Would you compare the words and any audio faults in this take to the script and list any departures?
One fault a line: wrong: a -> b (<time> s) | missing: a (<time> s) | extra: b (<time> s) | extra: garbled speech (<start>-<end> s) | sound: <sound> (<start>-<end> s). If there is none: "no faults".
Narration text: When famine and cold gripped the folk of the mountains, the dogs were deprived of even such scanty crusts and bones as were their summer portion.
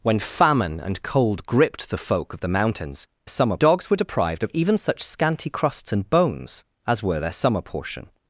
wrong: the -> summer (3.3 s)